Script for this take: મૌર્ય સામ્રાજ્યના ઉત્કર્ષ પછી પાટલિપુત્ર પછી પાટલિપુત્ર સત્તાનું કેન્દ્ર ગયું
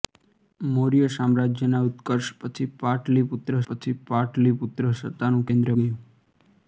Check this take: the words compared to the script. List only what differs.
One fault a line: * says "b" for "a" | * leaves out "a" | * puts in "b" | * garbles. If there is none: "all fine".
all fine